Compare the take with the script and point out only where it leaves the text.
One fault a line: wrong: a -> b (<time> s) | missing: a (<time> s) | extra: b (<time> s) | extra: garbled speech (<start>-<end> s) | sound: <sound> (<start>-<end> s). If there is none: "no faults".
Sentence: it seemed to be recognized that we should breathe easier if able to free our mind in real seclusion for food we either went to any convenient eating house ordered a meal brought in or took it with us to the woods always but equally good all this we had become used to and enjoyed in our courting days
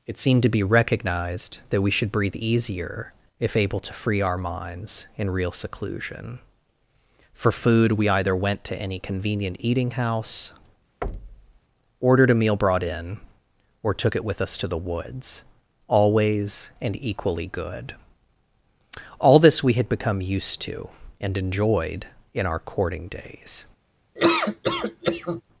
wrong: mind -> minds (4.4 s)
sound: thud (11.0-11.6 s)
wrong: but -> and (16.8 s)
sound: laugh (24.2-25.4 s)